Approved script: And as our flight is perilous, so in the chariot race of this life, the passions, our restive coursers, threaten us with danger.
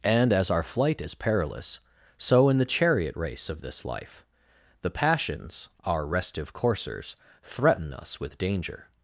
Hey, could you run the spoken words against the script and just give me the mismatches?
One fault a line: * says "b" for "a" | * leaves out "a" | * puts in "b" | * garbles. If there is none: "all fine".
all fine